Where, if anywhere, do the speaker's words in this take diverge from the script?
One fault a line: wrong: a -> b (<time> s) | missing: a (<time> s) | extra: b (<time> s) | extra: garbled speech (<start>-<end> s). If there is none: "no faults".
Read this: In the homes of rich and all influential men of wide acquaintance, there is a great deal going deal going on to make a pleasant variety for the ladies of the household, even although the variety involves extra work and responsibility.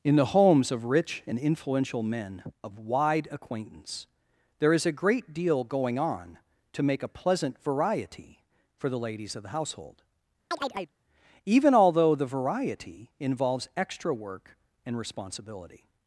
missing: all (1.4 s)
missing: deal going (6.0 s)